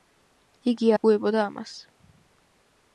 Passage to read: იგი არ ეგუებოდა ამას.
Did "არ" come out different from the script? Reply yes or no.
yes